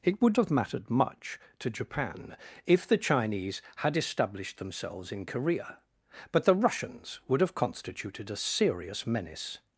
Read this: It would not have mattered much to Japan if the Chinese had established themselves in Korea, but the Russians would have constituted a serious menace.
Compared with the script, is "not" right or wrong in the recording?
wrong